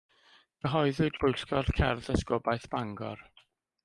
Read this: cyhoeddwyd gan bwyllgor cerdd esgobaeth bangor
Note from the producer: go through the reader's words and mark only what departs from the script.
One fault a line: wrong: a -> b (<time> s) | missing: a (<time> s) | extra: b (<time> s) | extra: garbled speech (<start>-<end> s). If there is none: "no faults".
missing: gan (1.2 s)